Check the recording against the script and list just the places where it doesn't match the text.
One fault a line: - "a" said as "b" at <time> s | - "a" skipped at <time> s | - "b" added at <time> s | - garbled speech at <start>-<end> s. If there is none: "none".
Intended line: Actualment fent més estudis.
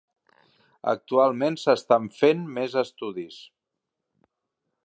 - "s'estan" added at 1.6 s